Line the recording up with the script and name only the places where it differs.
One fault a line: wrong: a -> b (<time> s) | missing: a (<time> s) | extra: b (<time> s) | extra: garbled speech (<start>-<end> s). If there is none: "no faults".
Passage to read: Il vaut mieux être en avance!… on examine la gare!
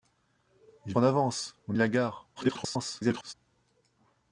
missing: vaut mieux être (0.9 s)
missing: examine (1.8 s)
extra: garbled speech (2.4-3.3 s)